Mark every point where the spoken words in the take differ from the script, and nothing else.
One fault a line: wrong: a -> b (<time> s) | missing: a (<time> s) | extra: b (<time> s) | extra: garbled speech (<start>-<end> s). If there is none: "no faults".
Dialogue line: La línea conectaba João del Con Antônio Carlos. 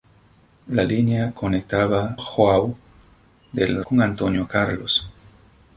no faults